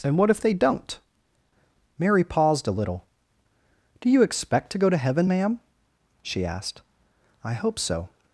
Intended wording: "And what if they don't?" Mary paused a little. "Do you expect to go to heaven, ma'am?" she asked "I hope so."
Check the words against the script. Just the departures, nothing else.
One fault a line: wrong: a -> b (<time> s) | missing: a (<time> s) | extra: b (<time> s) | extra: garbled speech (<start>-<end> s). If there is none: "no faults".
no faults